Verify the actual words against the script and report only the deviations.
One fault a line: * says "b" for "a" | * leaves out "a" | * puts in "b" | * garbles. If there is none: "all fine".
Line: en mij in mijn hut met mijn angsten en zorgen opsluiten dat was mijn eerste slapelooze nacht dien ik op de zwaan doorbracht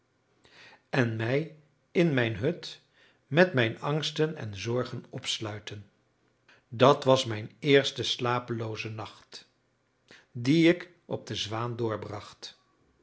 all fine